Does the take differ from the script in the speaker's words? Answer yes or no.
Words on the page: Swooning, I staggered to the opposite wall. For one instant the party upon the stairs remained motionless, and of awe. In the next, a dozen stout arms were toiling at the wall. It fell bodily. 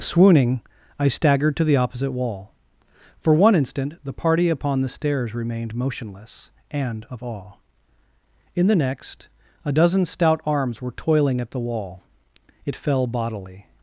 no